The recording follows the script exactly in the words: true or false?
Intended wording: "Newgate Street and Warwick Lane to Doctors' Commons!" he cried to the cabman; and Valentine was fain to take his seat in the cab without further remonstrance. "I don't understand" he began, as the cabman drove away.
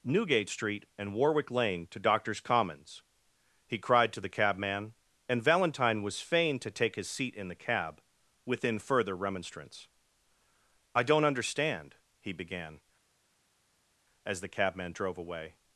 false